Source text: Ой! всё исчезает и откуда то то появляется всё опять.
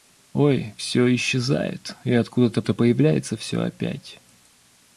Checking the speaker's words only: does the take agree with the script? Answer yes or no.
yes